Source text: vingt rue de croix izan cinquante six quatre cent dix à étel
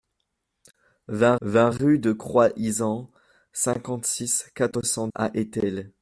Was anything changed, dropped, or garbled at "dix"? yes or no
yes